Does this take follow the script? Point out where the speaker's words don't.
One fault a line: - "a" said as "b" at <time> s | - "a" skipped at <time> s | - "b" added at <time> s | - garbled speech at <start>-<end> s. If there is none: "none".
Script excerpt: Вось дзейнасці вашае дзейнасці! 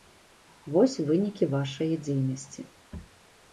- "дзейнасці" said as "вынікі" at 1.1 s